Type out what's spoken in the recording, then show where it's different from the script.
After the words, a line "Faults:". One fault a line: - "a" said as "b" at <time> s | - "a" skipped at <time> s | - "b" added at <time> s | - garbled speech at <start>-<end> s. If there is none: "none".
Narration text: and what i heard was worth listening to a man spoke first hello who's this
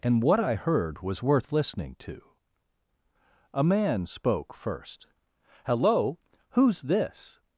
and what i heard was worth listening to a man spoke first hello who's this
Faults:
none